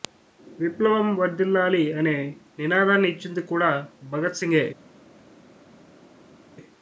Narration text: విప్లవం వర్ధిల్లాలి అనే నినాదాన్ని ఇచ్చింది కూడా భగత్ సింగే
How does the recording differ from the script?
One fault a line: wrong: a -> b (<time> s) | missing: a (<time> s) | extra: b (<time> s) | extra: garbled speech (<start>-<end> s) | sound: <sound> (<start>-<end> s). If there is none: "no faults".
no faults